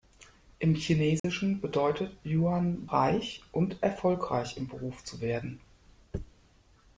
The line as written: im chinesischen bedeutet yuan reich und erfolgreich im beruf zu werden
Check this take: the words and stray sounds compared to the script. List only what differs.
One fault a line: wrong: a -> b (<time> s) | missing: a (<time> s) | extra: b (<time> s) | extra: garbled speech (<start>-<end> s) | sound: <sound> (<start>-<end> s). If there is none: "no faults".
sound: dropout (1.2-1.2 s)